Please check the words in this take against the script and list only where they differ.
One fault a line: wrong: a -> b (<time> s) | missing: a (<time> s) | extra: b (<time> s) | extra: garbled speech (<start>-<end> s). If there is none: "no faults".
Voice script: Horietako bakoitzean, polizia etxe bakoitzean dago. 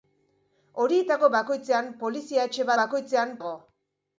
no faults